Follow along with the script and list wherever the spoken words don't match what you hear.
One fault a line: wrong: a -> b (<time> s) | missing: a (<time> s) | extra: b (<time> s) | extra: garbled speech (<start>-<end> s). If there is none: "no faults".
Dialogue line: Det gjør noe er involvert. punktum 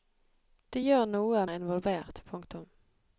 no faults